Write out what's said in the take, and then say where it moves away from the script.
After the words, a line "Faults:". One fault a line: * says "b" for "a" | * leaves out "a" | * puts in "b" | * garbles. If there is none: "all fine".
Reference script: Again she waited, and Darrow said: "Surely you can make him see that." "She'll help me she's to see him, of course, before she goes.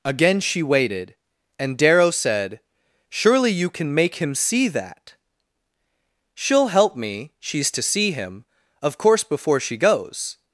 Again she waited, and Darrow said: "Surely you can make him see that." "She'll help me she's to see him, of course, before she goes.
Faults:
all fine